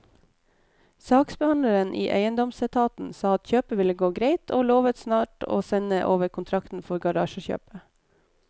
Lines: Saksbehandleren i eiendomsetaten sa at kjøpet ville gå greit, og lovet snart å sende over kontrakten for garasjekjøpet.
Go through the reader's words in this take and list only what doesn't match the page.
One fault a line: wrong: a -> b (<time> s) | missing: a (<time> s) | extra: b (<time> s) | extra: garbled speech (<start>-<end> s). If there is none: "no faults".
no faults